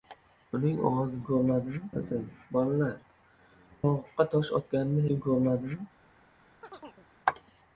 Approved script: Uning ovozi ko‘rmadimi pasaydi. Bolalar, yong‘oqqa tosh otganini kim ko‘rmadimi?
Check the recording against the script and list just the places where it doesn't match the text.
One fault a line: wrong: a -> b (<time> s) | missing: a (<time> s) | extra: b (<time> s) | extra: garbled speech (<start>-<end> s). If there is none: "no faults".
no faults